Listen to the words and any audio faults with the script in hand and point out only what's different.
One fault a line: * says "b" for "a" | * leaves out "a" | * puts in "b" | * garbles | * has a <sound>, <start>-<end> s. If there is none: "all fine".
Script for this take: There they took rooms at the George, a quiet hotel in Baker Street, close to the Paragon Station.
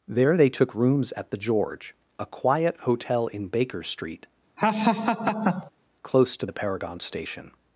* has a laugh, 4.6-5.7 s